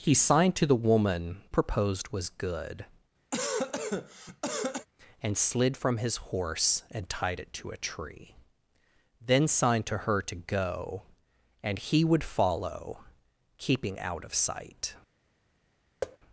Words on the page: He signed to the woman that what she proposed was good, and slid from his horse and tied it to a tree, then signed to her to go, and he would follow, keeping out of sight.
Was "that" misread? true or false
true